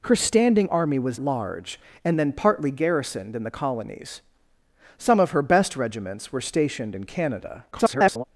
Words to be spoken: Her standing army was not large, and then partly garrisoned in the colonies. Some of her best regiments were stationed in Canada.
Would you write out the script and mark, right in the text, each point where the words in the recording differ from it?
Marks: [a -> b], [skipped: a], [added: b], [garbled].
Her standing army was [skipped: not] large, and then partly garrisoned in the colonies. Some of her best regiments were stationed in Canada. [garbled]